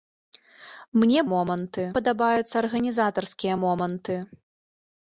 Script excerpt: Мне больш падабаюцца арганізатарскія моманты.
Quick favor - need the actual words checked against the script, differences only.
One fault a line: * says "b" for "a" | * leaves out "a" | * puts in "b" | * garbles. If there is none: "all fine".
* says "моманты" for "больш"